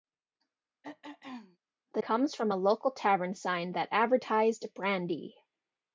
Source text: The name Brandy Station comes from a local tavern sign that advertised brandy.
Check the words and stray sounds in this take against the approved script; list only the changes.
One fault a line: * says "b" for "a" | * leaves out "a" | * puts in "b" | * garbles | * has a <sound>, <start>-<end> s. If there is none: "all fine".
* has a throat clearing, 0.8-1.6 s
* leaves out "name Brandy Station"